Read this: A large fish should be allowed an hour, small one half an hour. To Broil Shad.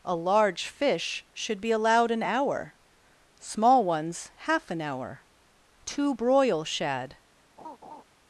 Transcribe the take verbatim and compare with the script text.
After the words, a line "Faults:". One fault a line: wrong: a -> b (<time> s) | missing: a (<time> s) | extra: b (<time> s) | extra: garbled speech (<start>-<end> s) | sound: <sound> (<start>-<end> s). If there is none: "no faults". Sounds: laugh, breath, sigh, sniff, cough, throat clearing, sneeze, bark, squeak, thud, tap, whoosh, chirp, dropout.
A large fish should be allowed an hour, small ones half an hour. To Broil Shad.
Faults:
wrong: one -> ones (3.8 s)
sound: laugh (7.6-8.0 s)